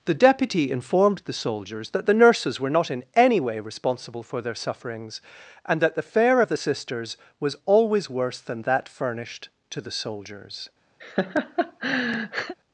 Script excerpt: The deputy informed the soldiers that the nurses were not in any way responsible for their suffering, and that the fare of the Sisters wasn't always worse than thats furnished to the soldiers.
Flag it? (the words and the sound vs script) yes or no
yes